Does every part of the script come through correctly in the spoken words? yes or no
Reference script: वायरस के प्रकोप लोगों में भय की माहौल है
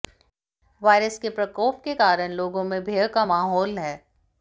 no